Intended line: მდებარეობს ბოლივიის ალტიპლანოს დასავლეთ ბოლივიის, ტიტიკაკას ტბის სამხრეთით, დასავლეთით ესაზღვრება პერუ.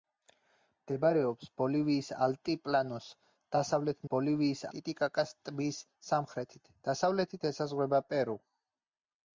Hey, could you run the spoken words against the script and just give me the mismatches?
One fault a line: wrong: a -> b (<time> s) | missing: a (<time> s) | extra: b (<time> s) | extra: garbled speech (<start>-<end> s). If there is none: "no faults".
no faults